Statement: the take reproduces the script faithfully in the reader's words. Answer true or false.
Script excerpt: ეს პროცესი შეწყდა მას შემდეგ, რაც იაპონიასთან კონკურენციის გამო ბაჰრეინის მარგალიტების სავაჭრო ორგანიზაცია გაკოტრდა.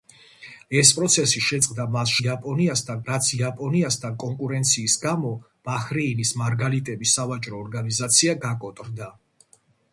false